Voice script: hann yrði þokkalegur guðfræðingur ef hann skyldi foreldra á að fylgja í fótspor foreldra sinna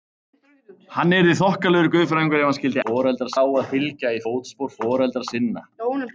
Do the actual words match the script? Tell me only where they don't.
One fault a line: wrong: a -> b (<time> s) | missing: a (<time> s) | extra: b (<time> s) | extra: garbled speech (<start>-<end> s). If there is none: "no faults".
no faults